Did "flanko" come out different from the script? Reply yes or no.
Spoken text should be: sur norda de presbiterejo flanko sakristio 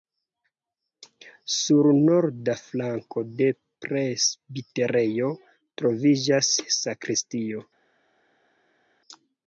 yes